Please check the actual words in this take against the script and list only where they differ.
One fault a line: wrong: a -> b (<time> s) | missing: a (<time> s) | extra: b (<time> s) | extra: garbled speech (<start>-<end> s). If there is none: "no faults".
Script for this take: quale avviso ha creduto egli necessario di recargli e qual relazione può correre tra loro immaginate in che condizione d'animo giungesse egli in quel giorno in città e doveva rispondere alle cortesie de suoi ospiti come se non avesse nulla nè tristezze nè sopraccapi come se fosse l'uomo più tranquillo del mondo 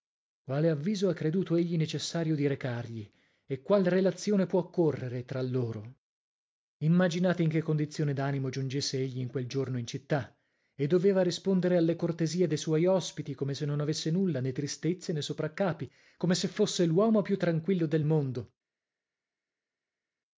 no faults